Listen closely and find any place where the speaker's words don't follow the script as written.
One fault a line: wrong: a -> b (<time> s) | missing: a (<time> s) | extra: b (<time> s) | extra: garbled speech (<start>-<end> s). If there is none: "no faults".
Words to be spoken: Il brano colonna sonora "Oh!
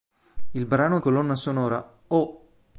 no faults